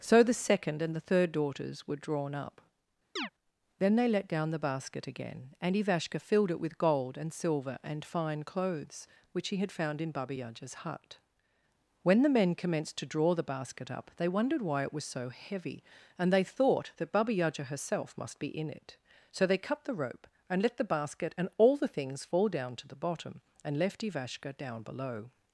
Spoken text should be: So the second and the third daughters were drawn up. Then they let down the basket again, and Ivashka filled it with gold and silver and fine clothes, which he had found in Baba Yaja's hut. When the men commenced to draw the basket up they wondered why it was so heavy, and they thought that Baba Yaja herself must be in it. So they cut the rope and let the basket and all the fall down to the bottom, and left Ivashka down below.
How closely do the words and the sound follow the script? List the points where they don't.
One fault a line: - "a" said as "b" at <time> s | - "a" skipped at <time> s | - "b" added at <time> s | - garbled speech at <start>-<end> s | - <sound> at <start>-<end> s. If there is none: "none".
- chirp at 3.2-3.3 s
- "things" added at 21.9 s